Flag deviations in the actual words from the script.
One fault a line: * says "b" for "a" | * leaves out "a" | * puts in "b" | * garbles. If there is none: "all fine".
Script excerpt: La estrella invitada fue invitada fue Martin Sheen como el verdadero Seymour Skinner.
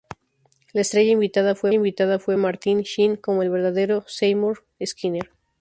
all fine